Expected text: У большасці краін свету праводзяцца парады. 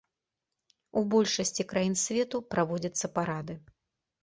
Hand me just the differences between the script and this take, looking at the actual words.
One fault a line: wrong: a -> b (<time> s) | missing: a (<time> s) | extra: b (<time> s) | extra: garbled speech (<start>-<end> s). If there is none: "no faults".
no faults